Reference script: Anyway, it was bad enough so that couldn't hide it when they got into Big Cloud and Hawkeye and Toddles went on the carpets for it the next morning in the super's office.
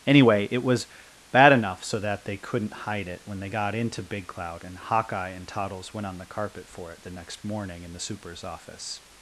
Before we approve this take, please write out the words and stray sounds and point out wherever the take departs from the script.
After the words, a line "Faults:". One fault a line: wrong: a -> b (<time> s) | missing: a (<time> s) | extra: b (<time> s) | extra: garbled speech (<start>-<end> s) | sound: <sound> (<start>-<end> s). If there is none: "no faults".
Anyway, it was bad enough so that they couldn't hide it when they got into Big Cloud and Hawkeye and Toddles went on the carpet for it the next morning in the super's office.
Faults:
extra: they (2.2 s)
wrong: carpets -> carpet (6.2 s)